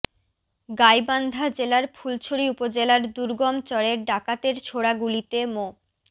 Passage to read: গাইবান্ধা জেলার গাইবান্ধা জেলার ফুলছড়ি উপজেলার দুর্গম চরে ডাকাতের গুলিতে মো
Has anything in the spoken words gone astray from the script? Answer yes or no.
yes